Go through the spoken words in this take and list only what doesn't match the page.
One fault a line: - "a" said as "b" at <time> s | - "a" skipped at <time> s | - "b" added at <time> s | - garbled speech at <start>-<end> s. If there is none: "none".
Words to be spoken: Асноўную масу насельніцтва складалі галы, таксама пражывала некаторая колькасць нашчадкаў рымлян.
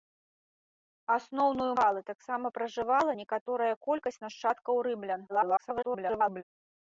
- "масу насельніцтва складалі" skipped at 1.7 s
- garbled speech at 5.3-6.4 s